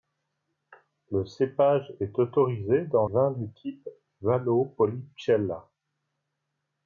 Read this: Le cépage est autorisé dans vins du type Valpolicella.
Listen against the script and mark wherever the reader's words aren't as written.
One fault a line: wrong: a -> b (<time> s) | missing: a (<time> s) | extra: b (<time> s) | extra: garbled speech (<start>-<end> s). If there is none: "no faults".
no faults